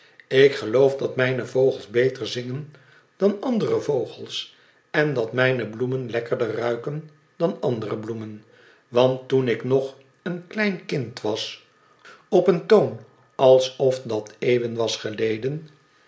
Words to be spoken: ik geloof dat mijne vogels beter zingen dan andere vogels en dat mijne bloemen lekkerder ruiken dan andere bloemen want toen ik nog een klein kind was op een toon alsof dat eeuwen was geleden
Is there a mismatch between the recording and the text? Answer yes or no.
no